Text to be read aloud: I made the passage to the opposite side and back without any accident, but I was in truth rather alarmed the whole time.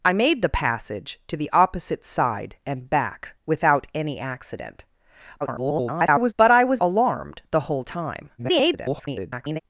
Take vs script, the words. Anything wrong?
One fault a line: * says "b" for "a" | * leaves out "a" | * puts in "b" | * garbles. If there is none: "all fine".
* garbles
* leaves out "in truth rather"
* garbles